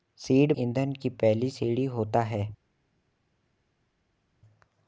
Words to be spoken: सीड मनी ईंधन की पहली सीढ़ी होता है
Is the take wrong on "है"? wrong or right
right